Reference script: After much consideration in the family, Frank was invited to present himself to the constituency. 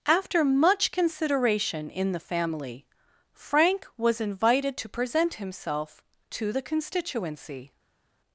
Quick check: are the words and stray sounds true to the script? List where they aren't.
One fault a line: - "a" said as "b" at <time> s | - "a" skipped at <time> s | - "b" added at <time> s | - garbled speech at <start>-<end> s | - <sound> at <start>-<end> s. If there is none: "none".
none